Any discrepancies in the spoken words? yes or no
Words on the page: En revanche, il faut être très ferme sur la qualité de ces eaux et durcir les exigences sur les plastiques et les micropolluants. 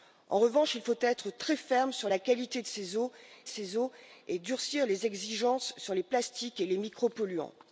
yes